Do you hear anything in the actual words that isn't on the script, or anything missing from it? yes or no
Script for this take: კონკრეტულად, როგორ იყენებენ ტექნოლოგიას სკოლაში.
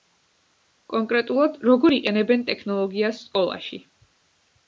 no